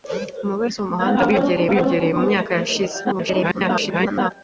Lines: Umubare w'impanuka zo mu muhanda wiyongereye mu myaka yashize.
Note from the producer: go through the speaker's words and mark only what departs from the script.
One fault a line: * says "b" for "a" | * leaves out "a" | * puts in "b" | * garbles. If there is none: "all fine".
* leaves out "w'impanuka"
* puts in "wiyongereye"
* garbles